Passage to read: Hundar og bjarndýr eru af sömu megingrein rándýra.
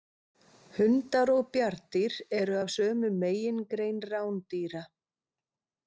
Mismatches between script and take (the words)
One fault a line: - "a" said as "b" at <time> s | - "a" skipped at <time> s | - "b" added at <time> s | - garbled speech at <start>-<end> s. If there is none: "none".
none